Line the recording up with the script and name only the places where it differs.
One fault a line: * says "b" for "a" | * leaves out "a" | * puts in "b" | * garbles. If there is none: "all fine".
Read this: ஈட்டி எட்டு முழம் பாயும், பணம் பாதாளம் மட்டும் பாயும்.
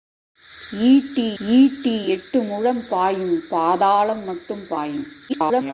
* puts in "ஈட்டி"
* leaves out "பணம்"
* garbles